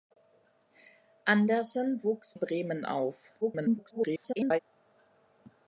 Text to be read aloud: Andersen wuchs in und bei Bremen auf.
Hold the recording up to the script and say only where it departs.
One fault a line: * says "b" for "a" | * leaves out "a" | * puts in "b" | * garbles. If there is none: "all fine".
* leaves out "in und bei"
* garbles